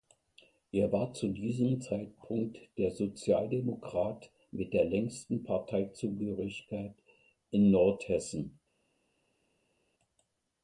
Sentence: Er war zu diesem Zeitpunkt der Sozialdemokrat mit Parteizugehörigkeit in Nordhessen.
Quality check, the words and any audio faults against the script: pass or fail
fail